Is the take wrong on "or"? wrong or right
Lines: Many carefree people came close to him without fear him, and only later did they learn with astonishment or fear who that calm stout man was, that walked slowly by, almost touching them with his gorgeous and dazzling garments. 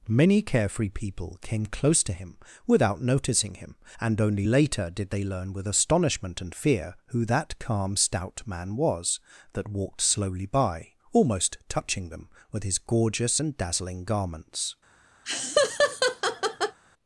wrong